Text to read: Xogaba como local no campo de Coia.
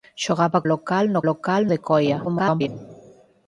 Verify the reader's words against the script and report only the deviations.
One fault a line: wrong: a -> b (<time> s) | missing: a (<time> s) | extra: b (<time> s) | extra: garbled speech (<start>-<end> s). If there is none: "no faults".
missing: como (0.6 s)
wrong: campo -> local (1.3 s)
extra: garbled speech (2.2-2.7 s)